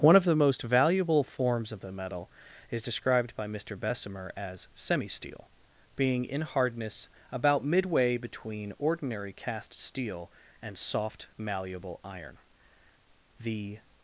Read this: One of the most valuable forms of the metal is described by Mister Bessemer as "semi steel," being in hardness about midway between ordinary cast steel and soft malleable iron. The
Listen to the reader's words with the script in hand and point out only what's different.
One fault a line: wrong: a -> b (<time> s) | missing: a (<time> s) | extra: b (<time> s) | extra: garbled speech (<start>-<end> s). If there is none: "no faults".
no faults